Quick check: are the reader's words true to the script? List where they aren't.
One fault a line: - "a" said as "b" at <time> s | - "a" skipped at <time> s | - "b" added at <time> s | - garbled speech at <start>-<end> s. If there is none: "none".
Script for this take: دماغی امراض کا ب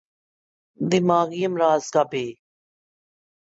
none